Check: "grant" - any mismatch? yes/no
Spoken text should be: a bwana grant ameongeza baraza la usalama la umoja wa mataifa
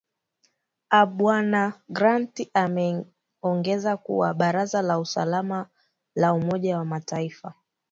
no